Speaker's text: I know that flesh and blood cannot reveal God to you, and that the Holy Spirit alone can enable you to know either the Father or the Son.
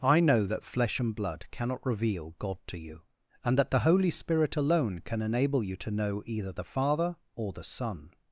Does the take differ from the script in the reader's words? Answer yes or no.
no